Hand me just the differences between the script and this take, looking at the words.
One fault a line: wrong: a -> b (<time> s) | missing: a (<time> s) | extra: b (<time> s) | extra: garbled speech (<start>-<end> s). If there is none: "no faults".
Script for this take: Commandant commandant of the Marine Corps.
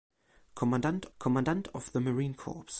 no faults